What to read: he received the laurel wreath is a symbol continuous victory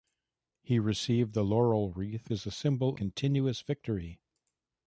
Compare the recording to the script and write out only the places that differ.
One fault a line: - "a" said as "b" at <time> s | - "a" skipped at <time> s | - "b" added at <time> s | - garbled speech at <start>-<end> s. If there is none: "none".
none